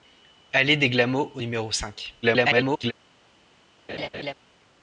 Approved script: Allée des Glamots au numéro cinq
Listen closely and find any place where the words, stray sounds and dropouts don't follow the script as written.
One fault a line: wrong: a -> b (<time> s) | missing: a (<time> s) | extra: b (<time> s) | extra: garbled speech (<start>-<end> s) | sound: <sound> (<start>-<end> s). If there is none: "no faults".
extra: garbled speech (2.2-2.9 s)
sound: laugh (3.9-4.3 s)